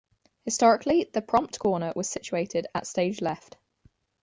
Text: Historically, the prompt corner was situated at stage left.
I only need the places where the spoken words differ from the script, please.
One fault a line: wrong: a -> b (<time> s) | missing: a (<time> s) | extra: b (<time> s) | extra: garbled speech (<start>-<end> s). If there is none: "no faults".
no faults